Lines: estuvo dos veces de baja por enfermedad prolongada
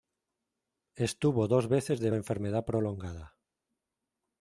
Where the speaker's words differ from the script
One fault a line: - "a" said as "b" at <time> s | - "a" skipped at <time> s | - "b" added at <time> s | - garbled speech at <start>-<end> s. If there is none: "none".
- "baja por" skipped at 2.1 s